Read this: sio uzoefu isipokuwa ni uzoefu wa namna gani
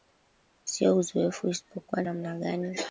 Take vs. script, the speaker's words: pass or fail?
fail